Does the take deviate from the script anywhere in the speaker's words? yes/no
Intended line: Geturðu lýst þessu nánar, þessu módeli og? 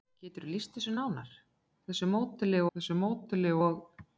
yes